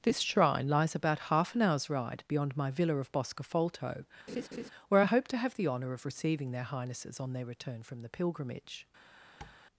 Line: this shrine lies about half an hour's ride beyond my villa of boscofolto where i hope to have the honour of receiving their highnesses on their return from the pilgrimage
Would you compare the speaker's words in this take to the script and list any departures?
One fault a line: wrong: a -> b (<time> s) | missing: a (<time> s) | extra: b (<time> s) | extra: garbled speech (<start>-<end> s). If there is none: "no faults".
no faults